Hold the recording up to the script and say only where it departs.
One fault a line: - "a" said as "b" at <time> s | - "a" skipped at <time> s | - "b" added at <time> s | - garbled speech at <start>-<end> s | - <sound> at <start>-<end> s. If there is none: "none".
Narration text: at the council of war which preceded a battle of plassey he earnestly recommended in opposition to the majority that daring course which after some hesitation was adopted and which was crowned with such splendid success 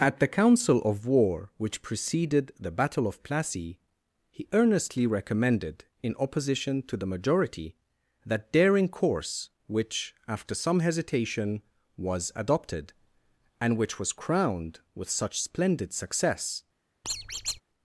- "a" said as "the" at 2.6 s
- squeak at 17.0-17.6 s